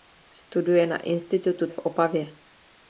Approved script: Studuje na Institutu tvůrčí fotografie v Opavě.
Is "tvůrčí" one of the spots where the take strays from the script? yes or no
yes